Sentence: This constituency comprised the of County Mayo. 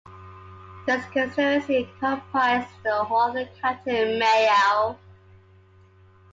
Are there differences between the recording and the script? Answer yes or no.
yes